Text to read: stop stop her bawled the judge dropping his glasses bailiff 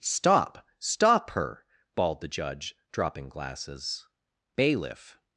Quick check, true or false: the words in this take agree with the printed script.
false